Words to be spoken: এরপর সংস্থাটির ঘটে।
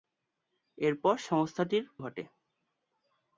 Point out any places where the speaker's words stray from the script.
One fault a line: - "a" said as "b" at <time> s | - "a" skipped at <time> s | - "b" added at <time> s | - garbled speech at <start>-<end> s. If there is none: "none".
none